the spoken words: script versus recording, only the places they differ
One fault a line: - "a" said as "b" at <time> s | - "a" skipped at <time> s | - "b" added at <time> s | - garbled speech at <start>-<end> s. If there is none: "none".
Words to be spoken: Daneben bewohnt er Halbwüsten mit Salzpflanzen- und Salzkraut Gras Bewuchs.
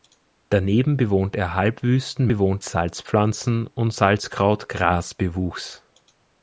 - "mit" said as "bewohnt" at 2.3 s